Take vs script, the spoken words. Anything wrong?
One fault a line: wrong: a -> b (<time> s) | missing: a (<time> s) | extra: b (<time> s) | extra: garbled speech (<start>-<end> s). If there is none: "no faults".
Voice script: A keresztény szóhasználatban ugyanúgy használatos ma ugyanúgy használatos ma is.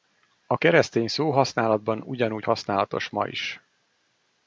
missing: ugyanúgy használatos ma (3.3 s)